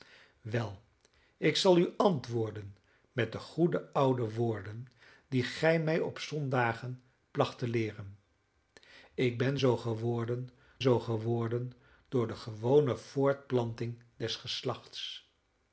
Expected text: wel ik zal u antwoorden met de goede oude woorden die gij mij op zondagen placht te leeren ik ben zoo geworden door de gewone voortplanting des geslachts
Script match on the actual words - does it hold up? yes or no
no